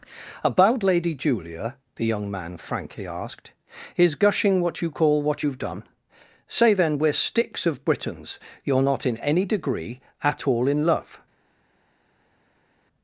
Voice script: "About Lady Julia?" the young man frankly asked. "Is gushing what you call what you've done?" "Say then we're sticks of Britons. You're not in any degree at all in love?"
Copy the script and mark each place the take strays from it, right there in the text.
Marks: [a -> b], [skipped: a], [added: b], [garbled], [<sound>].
"About Lady Julia?" the young man frankly asked. "Is gushing what you call what you've done?" "Say then we're sticks of Britons. You're not in any degree at all in love?"